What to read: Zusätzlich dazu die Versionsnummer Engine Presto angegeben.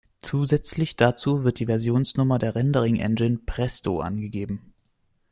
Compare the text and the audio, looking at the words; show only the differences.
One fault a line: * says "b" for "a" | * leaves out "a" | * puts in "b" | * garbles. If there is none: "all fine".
* puts in "wird"
* puts in "der Rendering"